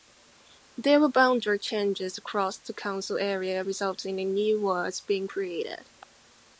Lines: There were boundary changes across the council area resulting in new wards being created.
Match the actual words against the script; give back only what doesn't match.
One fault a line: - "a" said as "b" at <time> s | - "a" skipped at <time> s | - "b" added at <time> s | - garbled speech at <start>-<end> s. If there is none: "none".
none